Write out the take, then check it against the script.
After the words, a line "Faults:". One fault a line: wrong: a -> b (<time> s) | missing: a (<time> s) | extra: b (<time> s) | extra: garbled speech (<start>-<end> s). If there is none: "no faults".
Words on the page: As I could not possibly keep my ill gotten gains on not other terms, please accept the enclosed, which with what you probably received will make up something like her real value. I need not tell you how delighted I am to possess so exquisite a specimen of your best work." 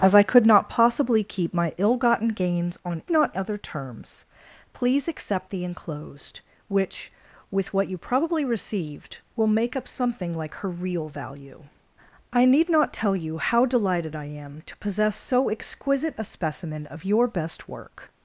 As I could not possibly keep my ill gotten gains on not other terms, please accept the enclosed, which with what you probably received will make up something like her real value. I need not tell you how delighted I am to possess so exquisite a specimen of your best work."
Faults:
no faults